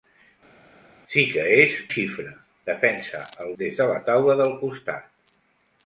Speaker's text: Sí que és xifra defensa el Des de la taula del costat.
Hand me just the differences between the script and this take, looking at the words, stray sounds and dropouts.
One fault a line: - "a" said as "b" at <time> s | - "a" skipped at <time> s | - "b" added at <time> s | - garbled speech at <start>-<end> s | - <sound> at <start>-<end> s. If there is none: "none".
none